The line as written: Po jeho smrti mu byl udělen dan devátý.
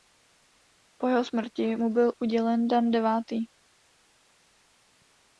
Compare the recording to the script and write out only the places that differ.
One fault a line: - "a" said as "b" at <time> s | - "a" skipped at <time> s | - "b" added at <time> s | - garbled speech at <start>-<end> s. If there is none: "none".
none